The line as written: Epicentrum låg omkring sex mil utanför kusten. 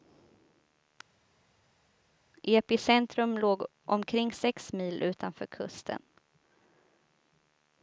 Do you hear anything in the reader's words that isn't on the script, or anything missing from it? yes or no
no